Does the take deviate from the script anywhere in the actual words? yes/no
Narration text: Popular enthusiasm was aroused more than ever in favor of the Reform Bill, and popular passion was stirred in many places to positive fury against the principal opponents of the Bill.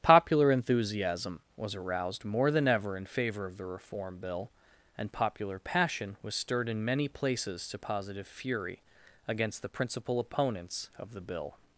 no